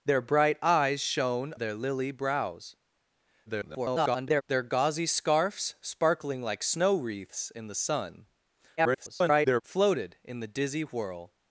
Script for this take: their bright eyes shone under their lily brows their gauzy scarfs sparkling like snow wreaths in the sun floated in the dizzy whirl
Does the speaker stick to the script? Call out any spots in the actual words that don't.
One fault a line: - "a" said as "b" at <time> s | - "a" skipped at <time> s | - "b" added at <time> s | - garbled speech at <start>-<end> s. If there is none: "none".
- "under" skipped at 1.5 s
- garbled speech at 3.5-4.4 s
- garbled speech at 8.8-9.6 s